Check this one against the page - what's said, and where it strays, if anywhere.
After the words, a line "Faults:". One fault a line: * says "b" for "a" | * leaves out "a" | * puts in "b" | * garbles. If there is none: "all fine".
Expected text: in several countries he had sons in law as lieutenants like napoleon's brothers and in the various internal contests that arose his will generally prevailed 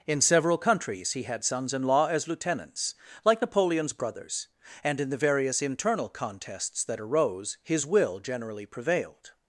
in several countries he had sons in law as lieutenants like napoleon's brothers and in the various internal contests that arose his will generally prevailed
Faults:
all fine